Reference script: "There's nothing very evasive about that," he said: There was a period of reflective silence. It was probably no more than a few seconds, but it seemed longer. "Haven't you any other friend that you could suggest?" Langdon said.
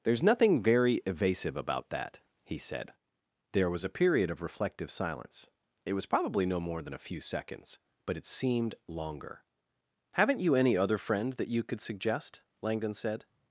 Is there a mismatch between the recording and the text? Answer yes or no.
no